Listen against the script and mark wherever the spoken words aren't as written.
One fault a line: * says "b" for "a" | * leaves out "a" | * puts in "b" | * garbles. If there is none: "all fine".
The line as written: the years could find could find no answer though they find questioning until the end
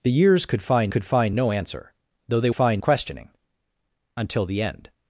all fine